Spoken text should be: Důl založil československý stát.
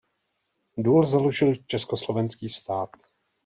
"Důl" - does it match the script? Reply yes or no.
yes